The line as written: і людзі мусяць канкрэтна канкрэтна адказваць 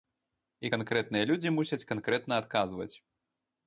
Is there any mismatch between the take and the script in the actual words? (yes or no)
yes